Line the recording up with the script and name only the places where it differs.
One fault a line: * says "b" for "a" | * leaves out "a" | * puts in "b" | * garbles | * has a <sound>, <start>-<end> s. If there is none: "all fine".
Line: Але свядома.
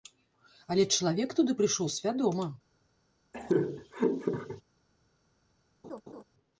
* puts in "чалавек туды прыйшоў"
* has a laugh, 3.3-4.6 s
* has a laugh, 5.8-6.2 s